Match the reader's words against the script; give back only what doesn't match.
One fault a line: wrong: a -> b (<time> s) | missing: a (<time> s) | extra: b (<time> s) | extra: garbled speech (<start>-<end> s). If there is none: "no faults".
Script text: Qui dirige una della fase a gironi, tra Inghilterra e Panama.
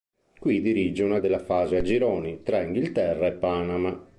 no faults